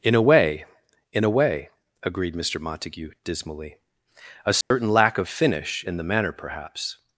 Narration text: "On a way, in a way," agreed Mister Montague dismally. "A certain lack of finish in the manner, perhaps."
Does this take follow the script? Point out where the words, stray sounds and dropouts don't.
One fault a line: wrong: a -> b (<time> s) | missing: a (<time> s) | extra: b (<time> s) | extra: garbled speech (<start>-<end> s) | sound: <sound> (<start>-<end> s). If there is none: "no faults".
wrong: On -> In (0.0 s)
sound: dropout (4.6-4.7 s)